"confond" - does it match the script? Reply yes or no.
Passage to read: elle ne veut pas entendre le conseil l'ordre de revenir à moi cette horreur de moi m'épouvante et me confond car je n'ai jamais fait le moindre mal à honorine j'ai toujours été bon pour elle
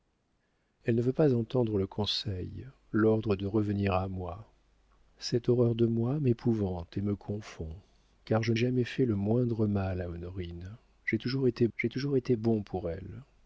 yes